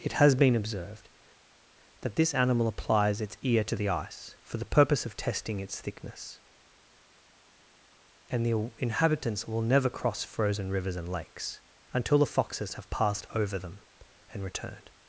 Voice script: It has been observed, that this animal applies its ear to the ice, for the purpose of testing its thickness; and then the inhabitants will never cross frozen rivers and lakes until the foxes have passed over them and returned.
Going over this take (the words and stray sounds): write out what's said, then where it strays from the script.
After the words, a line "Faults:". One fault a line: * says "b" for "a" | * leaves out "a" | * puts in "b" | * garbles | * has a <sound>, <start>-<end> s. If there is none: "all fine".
It has been observed, that this animal applies its ear to the ice, for the purpose of testing its thickness; and the inhabitants will never cross frozen rivers and lakes until the foxes have passed over them and returned.
Faults:
* leaves out "then"